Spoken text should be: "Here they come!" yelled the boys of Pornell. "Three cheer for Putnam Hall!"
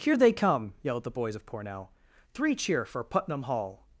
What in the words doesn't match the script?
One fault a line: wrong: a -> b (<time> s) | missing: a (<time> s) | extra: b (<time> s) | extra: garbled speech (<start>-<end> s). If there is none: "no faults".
no faults